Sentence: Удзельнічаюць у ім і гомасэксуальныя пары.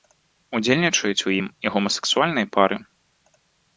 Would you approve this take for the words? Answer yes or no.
yes